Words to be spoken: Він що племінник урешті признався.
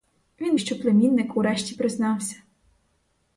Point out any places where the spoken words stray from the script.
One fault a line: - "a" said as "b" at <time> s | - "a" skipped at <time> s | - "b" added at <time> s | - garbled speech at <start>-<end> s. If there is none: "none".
none